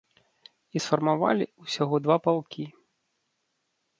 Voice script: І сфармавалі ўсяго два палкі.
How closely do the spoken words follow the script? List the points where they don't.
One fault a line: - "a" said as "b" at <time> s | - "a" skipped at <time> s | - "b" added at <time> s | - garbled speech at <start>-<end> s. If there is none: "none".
none